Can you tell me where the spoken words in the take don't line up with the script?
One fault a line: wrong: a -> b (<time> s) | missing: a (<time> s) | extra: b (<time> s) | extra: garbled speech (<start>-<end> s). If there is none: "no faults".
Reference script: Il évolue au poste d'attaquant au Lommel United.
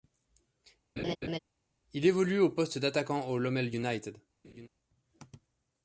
no faults